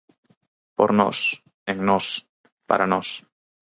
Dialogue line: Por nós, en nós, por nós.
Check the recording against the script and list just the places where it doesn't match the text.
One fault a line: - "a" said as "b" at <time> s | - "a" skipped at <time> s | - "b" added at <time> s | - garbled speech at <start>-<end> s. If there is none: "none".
- "por" said as "para" at 2.7 s